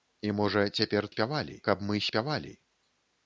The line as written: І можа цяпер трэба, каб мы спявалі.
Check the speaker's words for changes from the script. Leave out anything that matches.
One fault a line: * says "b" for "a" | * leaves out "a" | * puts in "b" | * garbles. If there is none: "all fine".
* says "спявалі" for "трэба"